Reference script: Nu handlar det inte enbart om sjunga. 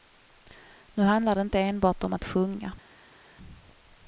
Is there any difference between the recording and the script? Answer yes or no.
yes